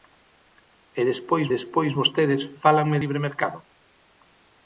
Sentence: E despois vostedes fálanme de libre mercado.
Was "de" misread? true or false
true